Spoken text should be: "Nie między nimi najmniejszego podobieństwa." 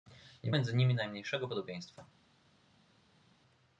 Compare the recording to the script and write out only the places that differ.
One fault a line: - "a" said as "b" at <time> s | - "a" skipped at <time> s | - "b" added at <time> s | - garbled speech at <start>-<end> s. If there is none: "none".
none